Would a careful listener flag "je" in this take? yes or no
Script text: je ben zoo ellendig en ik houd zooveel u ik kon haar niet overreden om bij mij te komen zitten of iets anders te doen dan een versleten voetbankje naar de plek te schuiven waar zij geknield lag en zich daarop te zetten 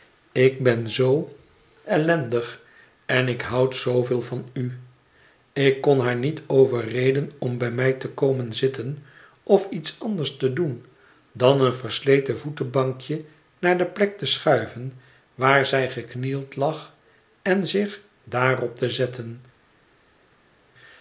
yes